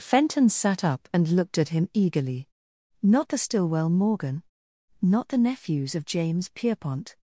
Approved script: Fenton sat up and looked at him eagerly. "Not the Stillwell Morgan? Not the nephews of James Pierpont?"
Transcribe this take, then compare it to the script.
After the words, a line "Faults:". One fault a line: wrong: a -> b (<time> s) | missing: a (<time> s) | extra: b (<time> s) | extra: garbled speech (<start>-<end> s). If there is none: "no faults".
Fenton sat up and looked at him eagerly. "Not the Stillwell Morgan? Not the nephews of James Pierpont?"
Faults:
no faults